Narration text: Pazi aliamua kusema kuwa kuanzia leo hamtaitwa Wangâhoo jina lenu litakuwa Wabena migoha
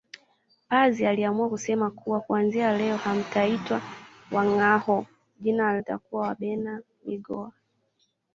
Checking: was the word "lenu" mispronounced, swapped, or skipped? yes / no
yes